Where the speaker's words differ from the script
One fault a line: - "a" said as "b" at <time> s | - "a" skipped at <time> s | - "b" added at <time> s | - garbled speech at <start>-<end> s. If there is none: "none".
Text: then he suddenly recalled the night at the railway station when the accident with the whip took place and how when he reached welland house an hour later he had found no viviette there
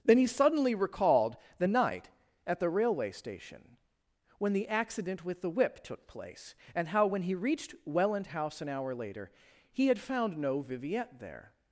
none